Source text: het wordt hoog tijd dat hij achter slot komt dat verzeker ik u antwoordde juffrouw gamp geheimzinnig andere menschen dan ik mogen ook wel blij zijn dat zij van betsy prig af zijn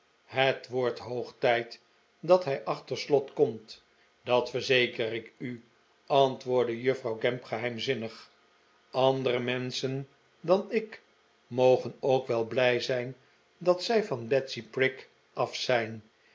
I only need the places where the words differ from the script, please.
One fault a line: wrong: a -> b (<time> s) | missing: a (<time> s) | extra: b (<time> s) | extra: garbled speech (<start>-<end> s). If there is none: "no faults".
no faults